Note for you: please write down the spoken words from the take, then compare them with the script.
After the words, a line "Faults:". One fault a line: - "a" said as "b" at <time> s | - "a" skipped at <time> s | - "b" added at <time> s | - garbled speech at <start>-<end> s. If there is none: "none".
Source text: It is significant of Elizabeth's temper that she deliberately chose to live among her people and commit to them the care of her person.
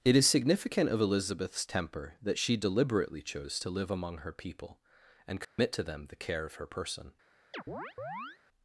It is significant of Elizabeth's temper that she deliberately chose to live among her people and commit to them the care of her person.
Faults:
none